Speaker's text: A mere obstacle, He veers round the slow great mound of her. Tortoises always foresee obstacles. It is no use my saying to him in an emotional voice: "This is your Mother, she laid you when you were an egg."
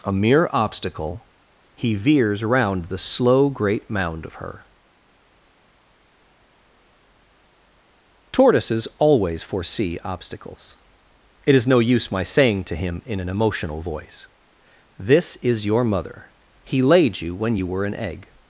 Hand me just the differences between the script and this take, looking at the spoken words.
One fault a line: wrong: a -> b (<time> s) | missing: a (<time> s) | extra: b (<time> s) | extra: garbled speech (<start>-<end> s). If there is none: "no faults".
wrong: she -> he (16.6 s)